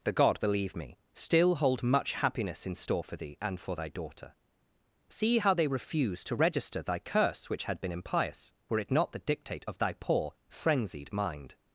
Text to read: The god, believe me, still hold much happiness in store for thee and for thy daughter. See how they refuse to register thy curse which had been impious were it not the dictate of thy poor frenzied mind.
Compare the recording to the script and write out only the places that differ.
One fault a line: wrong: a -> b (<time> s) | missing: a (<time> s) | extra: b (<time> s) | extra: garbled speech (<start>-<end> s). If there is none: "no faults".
no faults